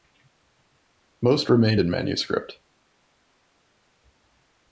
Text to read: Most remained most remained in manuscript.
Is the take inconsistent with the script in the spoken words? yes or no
yes